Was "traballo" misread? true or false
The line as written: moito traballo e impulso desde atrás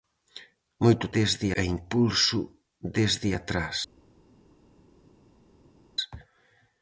true